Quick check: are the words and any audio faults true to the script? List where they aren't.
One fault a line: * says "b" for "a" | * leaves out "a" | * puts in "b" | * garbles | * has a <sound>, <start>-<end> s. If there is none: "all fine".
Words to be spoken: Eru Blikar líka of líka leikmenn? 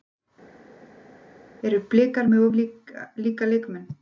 * says "með" for "líka"